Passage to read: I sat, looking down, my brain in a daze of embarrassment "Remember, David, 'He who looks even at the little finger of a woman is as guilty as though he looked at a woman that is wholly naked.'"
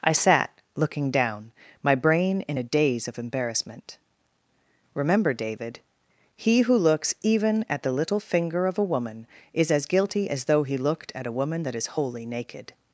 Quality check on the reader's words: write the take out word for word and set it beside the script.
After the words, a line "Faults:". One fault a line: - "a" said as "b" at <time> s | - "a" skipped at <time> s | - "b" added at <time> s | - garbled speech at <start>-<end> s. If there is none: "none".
I sat, looking down, my brain in a daze of embarrassment "Remember, David, 'He who looks even at the little finger of a woman is as guilty as though he looked at a woman that is wholly naked.'"
Faults:
none